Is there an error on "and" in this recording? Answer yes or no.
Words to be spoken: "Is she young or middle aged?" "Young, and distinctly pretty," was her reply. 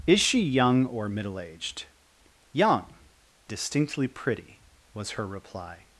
yes